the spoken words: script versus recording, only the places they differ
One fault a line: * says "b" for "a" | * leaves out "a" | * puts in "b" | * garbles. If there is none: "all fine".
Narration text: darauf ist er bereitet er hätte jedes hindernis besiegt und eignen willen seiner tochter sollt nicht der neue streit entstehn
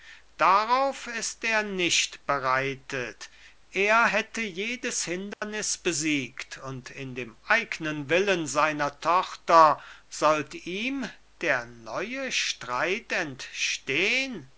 * puts in "nicht"
* puts in "in dem"
* says "ihm" for "nicht"